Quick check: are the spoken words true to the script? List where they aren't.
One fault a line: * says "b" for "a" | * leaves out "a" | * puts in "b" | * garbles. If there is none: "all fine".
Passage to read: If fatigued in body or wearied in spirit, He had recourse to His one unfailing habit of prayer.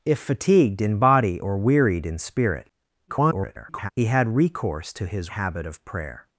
* garbles
* leaves out "one unfailing"